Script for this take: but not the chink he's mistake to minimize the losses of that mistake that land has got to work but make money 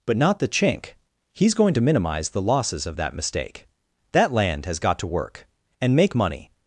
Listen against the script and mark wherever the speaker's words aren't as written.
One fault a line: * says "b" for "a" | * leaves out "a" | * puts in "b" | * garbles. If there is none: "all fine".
* says "going" for "mistake"
* says "and" for "but"